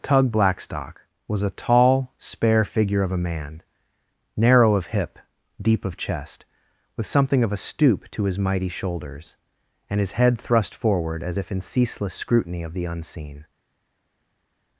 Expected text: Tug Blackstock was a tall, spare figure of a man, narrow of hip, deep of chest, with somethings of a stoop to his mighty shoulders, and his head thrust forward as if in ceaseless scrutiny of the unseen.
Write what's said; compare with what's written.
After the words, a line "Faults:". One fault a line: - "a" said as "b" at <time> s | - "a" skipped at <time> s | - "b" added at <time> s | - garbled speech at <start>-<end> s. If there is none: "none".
Tug Blackstock was a tall, spare figure of a man, narrow of hip, deep of chest, with something of a stoop to his mighty shoulders, and his head thrust forward as if in ceaseless scrutiny of the unseen.
Faults:
- "somethings" said as "something" at 7.1 s